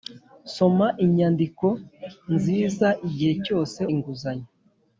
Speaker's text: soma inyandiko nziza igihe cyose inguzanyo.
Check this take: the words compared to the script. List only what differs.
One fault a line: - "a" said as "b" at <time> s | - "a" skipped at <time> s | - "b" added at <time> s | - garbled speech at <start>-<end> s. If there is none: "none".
none